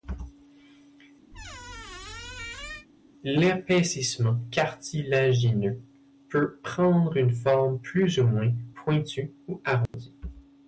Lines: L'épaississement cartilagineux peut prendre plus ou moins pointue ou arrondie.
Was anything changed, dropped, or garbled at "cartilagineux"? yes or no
no